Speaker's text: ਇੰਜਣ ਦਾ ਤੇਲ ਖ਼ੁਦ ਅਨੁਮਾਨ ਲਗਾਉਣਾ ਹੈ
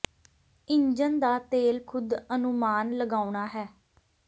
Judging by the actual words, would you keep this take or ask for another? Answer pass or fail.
pass